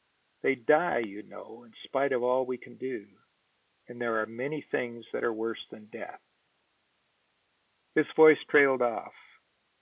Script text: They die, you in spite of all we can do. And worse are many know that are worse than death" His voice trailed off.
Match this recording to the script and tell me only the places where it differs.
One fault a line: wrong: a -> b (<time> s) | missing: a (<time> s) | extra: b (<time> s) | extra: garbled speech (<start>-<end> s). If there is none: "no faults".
extra: know (1.2 s)
wrong: worse -> there (4.0 s)
wrong: know -> things (4.7 s)